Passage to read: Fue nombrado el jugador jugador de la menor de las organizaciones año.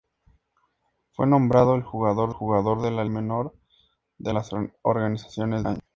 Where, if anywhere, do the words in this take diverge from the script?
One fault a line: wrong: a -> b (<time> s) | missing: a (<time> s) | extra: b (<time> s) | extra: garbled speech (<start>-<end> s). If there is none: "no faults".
no faults